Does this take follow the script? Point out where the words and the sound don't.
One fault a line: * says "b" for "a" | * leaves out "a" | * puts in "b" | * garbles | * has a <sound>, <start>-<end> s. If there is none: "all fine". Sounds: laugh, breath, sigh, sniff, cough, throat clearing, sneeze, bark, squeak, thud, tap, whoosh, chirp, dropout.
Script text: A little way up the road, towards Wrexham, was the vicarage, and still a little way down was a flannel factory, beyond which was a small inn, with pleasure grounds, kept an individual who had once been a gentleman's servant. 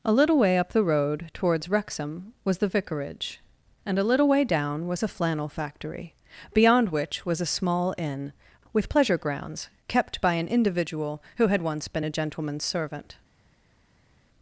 * leaves out "still"
* puts in "by"